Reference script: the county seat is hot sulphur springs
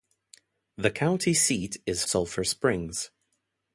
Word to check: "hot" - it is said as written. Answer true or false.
false